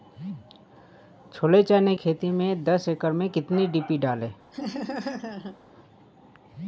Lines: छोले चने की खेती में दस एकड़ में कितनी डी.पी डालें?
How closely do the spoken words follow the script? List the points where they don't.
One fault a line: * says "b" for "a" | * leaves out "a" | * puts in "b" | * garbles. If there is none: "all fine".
* leaves out "की"